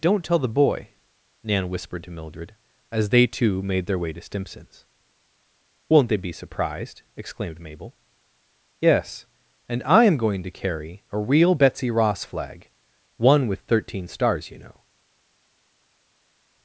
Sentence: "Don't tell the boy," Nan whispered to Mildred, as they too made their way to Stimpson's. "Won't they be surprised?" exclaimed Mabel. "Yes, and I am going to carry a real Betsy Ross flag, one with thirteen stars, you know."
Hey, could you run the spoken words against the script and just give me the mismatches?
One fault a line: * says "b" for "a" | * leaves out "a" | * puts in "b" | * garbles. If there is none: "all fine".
all fine